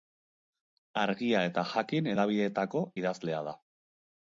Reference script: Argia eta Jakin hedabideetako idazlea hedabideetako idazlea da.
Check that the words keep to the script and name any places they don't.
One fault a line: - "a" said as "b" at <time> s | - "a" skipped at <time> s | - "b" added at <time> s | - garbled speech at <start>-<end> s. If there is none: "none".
- "hedabideetako idazlea" skipped at 3.5 s